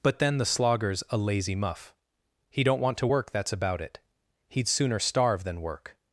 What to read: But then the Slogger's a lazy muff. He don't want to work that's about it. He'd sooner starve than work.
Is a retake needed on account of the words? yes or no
no